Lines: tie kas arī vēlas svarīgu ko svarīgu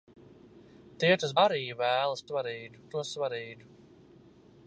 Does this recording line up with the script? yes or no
yes